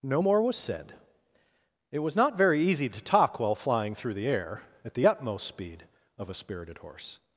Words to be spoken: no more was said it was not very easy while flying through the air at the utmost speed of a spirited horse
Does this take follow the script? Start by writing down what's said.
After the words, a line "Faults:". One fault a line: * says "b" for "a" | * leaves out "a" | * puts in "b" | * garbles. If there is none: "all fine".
no more was said it was not very easy to talk while flying through the air at the utmost speed of a spirited horse
Faults:
* puts in "to talk"